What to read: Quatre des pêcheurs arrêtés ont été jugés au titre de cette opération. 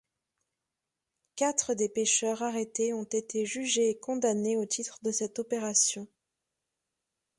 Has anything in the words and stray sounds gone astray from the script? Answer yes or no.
yes